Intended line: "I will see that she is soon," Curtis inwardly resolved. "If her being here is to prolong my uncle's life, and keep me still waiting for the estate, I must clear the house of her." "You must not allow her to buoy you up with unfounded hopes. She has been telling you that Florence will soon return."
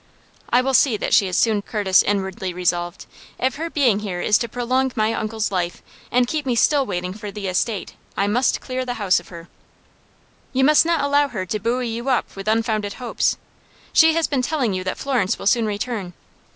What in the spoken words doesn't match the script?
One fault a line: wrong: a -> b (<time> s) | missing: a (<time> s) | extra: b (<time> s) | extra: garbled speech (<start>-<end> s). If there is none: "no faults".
no faults